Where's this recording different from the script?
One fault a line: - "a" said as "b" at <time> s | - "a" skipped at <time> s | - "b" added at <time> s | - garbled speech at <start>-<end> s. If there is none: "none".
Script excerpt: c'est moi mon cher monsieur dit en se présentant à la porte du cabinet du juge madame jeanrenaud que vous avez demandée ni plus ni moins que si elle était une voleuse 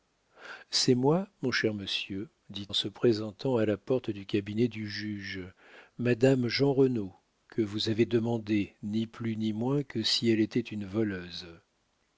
none